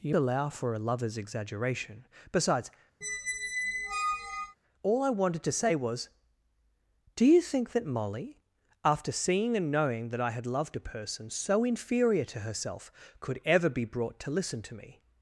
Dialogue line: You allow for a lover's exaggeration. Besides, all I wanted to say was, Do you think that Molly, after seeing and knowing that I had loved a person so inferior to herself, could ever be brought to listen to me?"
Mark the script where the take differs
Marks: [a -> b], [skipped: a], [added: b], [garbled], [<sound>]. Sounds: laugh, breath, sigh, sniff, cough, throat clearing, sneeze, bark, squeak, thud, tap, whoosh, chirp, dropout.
You allow for a lover's exaggeration. Besides, [squeak] all I wanted to say was, Do you think that Molly, after seeing and knowing that I had loved a person so inferior to herself, could ever be brought to listen to me?"